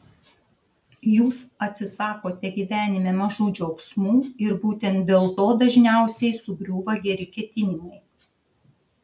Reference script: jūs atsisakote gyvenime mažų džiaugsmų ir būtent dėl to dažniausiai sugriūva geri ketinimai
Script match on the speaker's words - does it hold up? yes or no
yes